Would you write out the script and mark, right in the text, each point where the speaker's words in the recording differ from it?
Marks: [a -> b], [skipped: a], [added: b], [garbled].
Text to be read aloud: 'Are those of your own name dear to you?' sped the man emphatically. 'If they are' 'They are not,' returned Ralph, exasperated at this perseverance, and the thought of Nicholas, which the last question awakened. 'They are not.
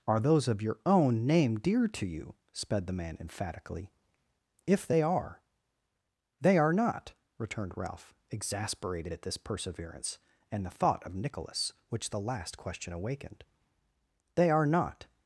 'Are those of your own name dear to you?' sped the man emphatically. 'If they are' 'They are not,' returned Ralph, exasperated at this perseverance, and the thought of Nicholas, which the last question awakened. 'They are not.